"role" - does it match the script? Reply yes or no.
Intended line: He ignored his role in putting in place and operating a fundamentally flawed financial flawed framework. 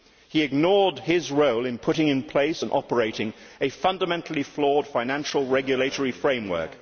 yes